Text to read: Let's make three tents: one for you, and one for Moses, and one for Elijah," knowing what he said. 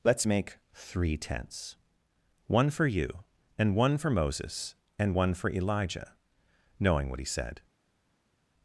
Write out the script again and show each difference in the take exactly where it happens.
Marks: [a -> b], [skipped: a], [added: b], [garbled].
Let's make three tents: one for you, and one for Moses, and one for Elijah," knowing what he said.